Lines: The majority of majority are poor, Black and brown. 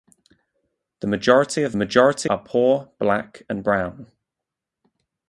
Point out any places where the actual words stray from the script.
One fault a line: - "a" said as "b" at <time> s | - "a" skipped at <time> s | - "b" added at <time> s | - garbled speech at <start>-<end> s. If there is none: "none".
none